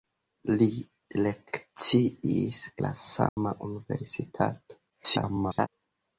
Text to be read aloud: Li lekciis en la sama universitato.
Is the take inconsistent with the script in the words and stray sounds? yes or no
yes